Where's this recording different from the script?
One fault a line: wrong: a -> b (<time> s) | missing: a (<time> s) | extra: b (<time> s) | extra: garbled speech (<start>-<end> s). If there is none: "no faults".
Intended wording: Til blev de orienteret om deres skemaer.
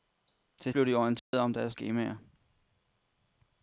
no faults